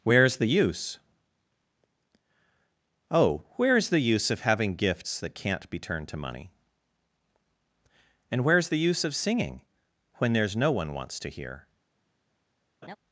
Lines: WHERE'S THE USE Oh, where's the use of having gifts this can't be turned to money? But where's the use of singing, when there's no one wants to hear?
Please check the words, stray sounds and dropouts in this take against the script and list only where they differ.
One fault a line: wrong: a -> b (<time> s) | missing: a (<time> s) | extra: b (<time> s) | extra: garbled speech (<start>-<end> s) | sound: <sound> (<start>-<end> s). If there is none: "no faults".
wrong: this -> that (5.2 s)
wrong: But -> And (8.3 s)
sound: laugh (12.8-13.0 s)